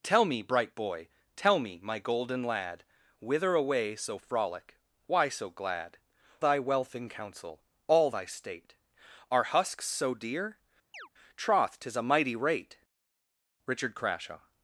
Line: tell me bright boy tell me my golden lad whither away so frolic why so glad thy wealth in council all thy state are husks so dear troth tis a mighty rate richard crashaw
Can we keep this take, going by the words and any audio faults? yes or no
no